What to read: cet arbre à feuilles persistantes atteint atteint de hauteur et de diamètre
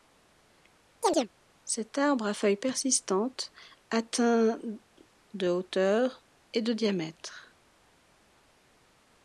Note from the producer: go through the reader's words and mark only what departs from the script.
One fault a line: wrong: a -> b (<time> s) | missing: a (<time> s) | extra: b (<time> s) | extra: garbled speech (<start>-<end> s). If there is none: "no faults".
missing: atteint (4.6 s)